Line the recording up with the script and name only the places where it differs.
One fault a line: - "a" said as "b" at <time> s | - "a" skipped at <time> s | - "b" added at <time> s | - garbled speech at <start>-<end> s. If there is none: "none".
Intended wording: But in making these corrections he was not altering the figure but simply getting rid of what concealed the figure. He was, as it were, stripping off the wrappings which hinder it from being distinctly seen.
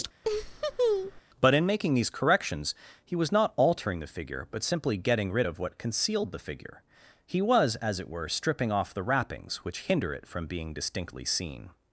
none